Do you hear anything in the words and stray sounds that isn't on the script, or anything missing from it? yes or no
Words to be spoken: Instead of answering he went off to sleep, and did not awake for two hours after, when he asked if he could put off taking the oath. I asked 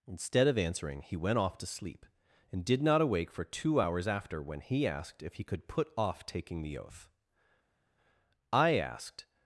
no